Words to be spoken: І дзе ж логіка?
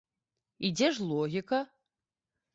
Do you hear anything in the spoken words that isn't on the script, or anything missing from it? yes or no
no